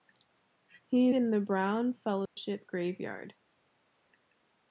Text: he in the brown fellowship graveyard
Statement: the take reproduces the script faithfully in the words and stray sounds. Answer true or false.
false